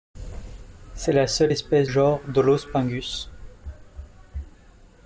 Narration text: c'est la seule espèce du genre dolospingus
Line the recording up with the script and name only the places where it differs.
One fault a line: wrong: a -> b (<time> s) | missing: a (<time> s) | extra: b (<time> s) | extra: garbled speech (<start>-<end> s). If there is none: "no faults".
missing: du (1.9 s)